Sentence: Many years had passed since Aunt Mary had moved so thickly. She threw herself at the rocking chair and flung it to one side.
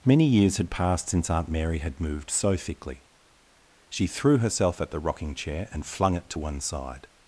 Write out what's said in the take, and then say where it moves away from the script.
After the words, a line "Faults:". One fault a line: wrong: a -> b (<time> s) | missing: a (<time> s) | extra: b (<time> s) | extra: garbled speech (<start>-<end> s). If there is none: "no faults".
Many years had passed since Aunt Mary had moved so thickly. She threw herself at the rocking chair and flung it to one side.
Faults:
no faults